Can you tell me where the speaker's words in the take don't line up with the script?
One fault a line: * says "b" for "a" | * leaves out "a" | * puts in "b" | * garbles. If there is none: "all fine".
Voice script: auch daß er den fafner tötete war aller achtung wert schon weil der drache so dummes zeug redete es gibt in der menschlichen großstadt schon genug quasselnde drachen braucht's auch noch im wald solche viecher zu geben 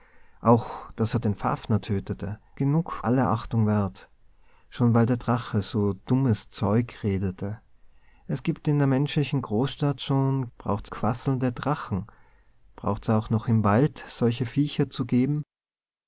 * says "genug" for "war"
* says "braucht's" for "genug"